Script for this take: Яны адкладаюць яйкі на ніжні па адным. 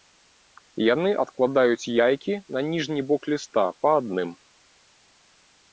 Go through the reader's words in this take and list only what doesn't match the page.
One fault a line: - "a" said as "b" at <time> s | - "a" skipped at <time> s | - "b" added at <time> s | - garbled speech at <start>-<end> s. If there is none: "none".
- "бок ліста" added at 3.1 s